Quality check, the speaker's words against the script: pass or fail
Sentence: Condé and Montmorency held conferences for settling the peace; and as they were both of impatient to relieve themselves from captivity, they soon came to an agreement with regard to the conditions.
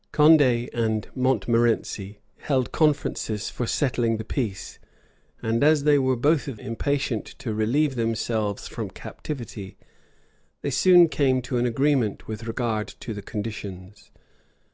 pass